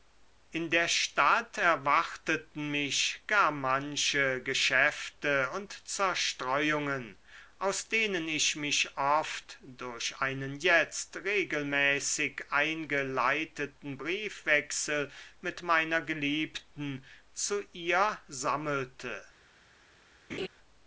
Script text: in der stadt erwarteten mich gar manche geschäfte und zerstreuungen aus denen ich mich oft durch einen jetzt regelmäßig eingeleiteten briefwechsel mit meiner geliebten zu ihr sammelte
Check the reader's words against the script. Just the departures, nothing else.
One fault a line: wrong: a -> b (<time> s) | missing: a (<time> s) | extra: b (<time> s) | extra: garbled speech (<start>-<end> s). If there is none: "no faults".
no faults